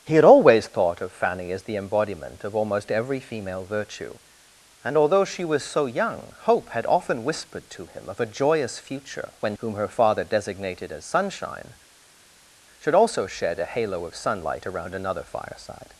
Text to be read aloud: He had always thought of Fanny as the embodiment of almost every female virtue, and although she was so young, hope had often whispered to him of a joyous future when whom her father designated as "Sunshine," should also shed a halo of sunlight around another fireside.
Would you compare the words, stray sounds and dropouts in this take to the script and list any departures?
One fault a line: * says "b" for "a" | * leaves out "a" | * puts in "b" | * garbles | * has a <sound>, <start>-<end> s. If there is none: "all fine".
all fine